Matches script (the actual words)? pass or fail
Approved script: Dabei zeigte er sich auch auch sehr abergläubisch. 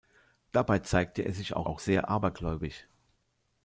pass